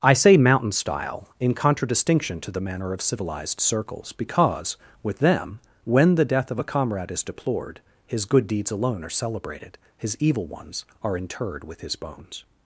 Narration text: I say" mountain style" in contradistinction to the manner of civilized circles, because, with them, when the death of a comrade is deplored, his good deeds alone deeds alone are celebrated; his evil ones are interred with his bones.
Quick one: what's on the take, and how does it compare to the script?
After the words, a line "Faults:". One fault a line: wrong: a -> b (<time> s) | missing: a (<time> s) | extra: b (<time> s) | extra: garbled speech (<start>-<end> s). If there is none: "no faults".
I say" mountain style" in contradistinction to the manner of civilized circles, because, with them, when the death of a comrade is deplored, his good deeds alone are celebrated; his evil ones are interred with his bones.
Faults:
missing: deeds alone (9.0 s)